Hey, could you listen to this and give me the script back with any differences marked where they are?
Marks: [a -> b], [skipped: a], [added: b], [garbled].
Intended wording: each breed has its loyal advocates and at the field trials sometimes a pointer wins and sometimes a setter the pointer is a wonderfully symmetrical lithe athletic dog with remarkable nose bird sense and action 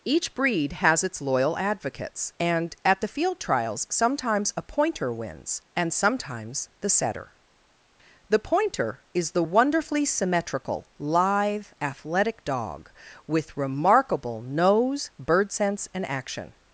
each breed has its loyal advocates and at the field trials sometimes a pointer wins and sometimes [a -> the] setter the pointer is [a -> the] wonderfully symmetrical lithe athletic dog with remarkable nose bird sense and action